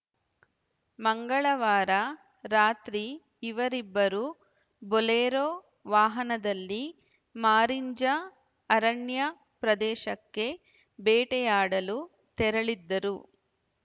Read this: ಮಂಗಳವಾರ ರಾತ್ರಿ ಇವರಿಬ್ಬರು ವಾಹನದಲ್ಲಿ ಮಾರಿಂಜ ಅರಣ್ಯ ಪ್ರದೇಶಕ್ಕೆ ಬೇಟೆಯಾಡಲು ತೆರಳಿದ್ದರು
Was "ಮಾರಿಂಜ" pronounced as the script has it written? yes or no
yes